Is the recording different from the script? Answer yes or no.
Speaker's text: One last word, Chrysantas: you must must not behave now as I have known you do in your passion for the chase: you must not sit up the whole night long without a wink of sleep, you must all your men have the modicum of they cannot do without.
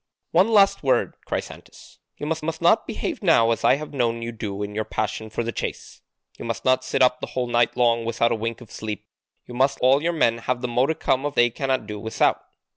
no